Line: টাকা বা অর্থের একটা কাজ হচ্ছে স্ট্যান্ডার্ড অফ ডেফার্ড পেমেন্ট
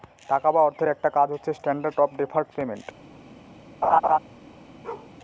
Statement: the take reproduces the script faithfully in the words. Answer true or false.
true